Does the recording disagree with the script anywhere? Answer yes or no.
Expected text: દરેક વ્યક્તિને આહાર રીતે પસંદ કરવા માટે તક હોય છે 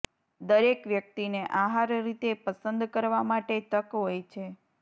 no